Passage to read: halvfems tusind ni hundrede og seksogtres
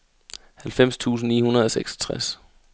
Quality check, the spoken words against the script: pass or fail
pass